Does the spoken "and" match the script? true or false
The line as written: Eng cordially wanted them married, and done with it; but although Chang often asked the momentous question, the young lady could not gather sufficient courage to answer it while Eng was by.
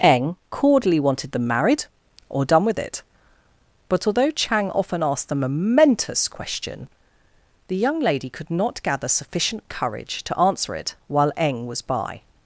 false